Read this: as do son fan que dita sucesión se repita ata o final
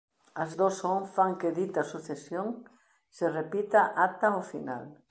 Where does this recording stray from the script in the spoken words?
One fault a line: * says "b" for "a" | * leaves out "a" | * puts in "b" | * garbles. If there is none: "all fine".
all fine